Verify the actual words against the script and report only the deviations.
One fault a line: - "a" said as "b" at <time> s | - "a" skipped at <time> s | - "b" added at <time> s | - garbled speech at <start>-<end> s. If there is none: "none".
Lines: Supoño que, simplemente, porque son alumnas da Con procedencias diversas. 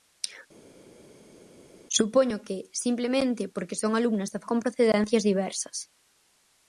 none